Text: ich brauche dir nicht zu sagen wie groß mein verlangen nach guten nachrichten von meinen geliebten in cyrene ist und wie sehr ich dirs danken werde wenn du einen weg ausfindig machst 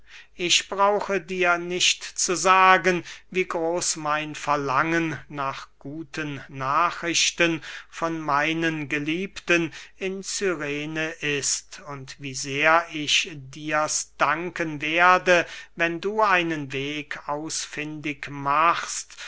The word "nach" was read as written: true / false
true